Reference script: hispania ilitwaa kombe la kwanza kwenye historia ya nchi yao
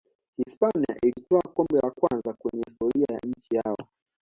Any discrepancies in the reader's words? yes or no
no